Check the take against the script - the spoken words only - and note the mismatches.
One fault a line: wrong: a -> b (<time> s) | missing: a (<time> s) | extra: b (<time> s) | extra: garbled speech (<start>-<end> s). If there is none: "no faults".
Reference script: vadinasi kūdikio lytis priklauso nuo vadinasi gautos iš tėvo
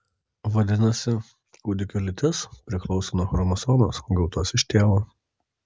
wrong: vadinasi -> chromosomos (3.4 s)